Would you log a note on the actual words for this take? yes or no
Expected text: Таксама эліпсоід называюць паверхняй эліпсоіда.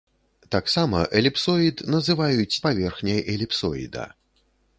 no